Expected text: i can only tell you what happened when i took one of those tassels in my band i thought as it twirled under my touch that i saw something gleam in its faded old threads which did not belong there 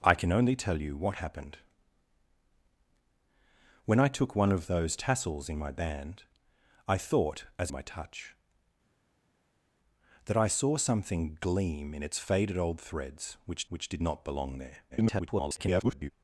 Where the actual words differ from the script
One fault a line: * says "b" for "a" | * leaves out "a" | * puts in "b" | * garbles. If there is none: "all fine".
* leaves out "it twirled under"
* puts in "which"
* garbles